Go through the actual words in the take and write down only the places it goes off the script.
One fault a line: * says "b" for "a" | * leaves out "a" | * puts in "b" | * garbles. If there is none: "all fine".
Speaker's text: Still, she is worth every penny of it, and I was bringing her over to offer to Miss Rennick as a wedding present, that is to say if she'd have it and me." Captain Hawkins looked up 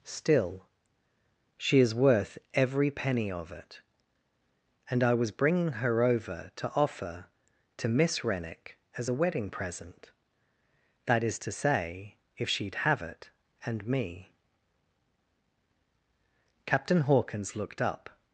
all fine